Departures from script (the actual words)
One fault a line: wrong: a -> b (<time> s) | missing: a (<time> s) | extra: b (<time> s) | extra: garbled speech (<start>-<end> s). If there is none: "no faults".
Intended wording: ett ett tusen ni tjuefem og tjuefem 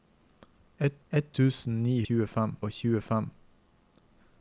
no faults